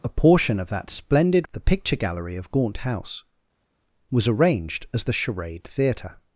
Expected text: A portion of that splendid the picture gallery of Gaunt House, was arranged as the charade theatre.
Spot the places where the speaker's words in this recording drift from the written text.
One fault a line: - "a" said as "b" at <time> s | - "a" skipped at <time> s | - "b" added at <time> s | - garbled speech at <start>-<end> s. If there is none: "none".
none